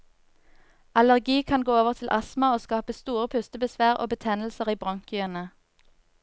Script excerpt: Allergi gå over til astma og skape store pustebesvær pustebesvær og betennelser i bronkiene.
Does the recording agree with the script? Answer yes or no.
no